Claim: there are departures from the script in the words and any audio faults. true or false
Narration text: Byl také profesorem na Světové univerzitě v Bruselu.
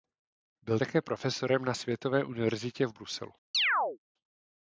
true